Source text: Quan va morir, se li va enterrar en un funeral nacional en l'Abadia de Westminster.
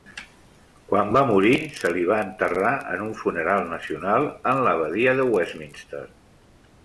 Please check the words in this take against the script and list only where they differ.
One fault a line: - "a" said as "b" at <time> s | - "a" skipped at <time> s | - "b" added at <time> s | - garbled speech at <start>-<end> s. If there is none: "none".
none